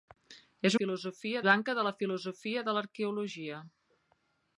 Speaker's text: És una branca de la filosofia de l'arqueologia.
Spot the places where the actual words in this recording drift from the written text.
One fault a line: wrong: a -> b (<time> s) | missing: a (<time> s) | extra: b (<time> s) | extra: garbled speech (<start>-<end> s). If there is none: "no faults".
wrong: una -> filosofia (0.8 s)